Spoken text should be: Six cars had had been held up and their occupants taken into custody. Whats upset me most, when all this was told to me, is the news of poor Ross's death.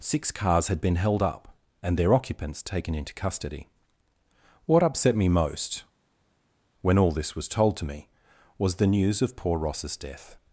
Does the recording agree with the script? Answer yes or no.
no